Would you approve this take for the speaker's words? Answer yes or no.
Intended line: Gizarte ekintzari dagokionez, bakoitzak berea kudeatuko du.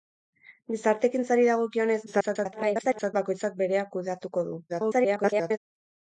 no